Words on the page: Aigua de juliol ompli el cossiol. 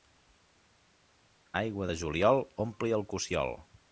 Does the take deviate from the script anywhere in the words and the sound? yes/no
no